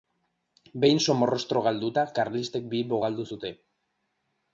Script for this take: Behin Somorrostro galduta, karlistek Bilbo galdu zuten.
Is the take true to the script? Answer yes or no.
yes